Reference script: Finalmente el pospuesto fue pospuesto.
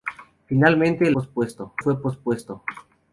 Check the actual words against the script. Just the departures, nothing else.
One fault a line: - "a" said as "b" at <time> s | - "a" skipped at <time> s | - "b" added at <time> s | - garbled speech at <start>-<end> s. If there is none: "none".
none